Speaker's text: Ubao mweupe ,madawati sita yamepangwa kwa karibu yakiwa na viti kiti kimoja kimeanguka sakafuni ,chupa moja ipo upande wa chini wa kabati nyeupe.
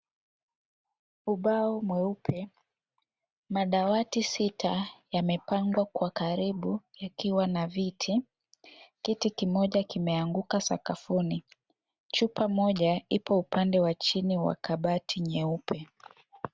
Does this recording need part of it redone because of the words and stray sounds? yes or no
no